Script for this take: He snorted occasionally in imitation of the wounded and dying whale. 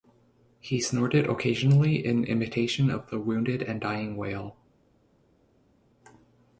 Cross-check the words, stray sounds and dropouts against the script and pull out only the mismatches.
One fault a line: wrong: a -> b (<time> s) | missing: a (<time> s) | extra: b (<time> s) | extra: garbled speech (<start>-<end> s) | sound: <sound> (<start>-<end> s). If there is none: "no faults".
no faults